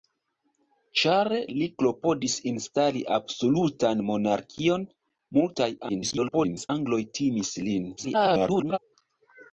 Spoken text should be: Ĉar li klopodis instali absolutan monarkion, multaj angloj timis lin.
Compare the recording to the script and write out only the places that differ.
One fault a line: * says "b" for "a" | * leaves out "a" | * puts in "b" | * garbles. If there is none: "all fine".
* garbles
* garbles